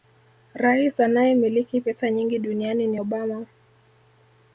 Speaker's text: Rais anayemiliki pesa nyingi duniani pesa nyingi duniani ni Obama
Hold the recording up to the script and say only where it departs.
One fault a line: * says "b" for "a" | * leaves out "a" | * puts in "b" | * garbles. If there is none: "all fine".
* leaves out "pesa nyingi duniani"